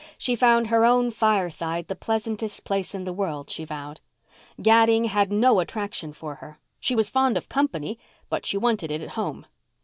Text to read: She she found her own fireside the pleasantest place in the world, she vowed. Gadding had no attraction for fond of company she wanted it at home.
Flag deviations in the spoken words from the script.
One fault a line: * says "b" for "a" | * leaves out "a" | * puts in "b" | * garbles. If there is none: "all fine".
* leaves out "she"
* puts in "her She was"
* puts in "but"